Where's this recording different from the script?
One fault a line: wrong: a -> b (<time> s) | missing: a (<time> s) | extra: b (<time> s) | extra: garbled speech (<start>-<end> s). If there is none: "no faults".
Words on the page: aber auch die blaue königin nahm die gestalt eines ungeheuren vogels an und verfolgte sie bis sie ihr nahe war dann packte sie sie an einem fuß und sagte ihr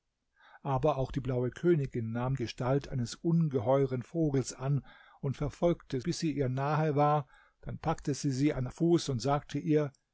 missing: die (2.4 s)
missing: sie (6.0 s)
missing: einem (8.7 s)